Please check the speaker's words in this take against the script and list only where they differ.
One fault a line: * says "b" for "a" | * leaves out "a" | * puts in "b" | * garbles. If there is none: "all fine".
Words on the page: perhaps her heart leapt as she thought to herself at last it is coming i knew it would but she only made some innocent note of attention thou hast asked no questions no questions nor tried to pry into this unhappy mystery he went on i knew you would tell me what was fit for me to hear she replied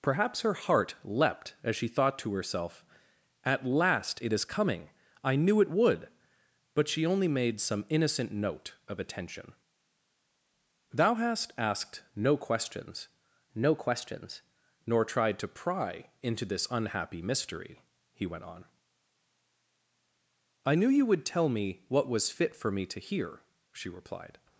all fine